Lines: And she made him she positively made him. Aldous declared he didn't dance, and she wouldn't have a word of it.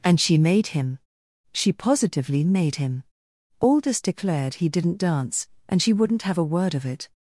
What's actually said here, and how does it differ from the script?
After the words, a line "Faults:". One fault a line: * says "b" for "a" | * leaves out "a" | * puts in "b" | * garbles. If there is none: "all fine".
And she made him she positively made him. Aldous declared he didn't dance, and she wouldn't have a word of it.
Faults:
all fine